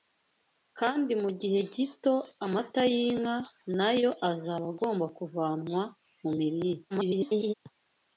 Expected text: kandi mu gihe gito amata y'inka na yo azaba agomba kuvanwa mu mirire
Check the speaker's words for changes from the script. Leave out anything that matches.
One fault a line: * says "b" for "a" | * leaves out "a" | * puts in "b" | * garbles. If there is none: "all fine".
* garbles